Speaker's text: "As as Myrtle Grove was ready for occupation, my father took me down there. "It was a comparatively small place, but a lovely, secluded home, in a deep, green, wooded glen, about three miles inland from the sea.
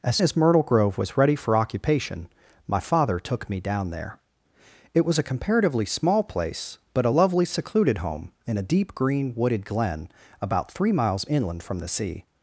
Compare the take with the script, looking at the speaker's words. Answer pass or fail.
pass